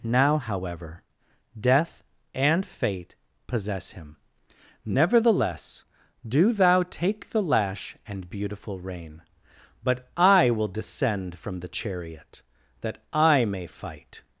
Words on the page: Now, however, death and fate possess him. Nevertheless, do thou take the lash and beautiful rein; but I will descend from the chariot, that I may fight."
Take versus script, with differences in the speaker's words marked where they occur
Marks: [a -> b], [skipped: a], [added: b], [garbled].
Now, however, death and fate possess him. Nevertheless, do thou take the lash and beautiful rein; but I will descend from the chariot, that I may fight."